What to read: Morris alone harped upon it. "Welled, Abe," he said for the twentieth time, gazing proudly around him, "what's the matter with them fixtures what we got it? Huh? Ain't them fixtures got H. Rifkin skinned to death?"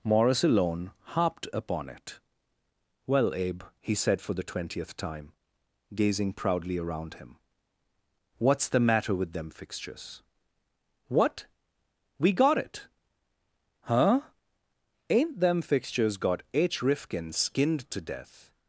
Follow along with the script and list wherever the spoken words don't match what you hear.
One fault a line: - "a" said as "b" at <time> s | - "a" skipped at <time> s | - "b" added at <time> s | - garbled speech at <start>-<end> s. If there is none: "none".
- "Welled" said as "Well" at 3.1 s